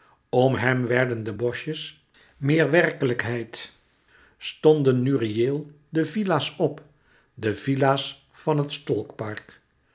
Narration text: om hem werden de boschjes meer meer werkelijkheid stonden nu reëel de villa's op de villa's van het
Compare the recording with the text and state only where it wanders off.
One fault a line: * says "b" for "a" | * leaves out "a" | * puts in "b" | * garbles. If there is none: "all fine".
* leaves out "meer"